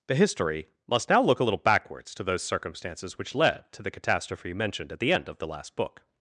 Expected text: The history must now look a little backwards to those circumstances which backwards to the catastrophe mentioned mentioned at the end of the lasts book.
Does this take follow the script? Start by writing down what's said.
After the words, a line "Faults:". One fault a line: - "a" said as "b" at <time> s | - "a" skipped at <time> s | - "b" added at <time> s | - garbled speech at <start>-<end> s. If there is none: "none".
The history must now look a little backwards to those circumstances which led to the catastrophe mentioned at the end of the last book.
Faults:
- "backwards" said as "led" at 3.4 s
- "mentioned" skipped at 4.9 s
- "lasts" said as "last" at 5.5 s